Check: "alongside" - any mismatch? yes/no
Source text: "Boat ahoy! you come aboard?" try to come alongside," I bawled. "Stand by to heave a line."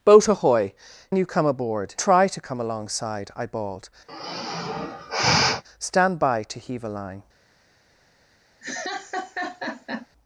no